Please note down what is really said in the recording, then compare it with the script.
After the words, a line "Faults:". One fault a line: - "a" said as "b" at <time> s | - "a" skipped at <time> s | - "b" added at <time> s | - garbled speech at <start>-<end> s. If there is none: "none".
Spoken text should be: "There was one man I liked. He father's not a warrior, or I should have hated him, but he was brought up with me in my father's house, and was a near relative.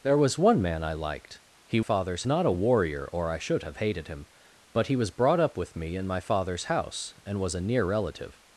"There was one man I liked. He father's not a warrior, or I should have hated him, but he was brought up with me in my father's house, and was a near relative.
Faults:
none